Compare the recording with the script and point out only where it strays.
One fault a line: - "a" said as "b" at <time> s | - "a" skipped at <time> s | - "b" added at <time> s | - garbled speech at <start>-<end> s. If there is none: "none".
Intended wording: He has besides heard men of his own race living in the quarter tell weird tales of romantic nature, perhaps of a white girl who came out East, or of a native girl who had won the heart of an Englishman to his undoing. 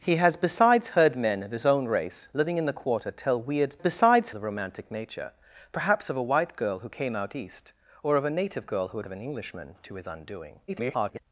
- "tales" said as "besides" at 3.8 s
- "won the heart" skipped at 9.0 s
- garbled speech at 10.7-11.2 s